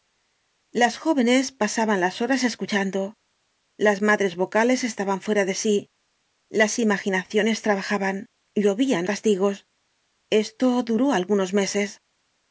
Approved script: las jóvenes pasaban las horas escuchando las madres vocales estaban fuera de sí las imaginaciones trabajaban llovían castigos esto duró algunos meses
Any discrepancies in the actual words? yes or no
no